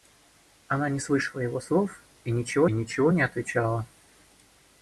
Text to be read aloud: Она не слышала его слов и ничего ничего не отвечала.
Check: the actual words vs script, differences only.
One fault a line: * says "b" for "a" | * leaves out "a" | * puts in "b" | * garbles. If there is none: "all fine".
all fine